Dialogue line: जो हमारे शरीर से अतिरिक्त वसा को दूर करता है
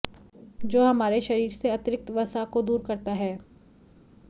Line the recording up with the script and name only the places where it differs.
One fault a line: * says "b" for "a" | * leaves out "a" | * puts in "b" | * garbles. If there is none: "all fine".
all fine